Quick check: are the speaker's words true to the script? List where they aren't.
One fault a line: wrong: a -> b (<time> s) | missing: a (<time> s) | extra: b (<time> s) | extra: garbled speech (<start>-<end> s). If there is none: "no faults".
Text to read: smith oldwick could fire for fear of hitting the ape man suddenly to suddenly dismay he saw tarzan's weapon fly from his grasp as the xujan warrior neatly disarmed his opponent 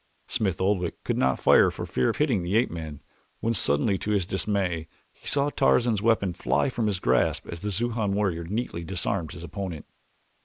extra: not (1.2 s)
extra: when (3.4 s)
wrong: suddenly -> his (4.1 s)